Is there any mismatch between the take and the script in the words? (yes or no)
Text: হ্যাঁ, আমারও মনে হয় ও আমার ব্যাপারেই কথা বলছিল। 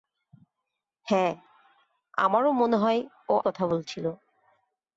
yes